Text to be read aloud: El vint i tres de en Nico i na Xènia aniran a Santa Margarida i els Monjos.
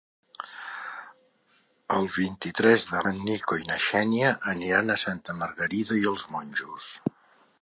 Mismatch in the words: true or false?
false